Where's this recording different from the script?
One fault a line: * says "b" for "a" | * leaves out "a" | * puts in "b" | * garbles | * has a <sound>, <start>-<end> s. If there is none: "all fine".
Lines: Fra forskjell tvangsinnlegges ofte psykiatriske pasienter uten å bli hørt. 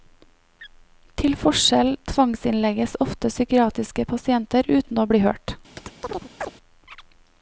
* says "Til" for "Fra"
* has a chirp, 5.8-6.5 s